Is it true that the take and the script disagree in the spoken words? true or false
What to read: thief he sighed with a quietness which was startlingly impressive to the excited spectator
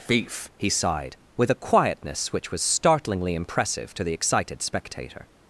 false